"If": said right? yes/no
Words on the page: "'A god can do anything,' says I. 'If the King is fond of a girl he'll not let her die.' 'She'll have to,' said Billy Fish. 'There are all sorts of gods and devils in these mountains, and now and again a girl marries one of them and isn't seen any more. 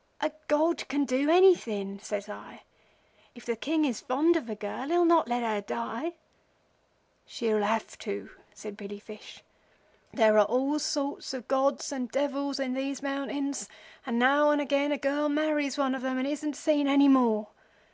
yes